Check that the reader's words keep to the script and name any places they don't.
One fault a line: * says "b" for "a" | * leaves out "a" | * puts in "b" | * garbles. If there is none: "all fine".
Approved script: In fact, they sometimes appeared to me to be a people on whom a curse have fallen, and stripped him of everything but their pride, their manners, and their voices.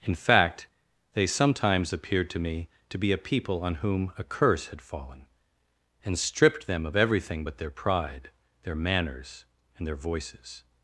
* says "had" for "have"
* says "them" for "him"